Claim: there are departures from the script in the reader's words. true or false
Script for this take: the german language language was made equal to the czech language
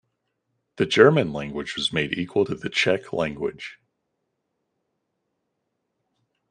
true